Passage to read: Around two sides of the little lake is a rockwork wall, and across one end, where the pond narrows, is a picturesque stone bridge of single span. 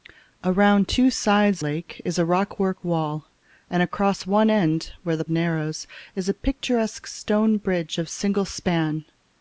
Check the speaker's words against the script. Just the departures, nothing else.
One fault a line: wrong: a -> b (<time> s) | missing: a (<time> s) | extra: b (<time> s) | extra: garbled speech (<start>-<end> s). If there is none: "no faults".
missing: of the little (1.6 s)
missing: pond (5.2 s)